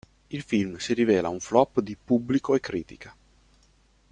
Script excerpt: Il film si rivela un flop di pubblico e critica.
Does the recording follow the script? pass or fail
pass